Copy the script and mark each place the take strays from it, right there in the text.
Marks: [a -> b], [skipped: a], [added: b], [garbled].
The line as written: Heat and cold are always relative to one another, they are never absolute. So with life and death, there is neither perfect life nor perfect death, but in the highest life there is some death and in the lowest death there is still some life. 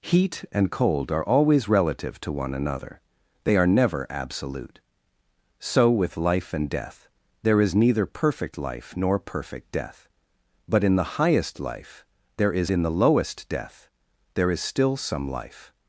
Heat and cold are always relative to one another, they are never absolute. So with life and death, there is neither perfect life nor perfect death, but in the highest life there is [skipped: some death and] in the lowest death there is still some life.